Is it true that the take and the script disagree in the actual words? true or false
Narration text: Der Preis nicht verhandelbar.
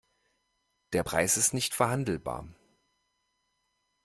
true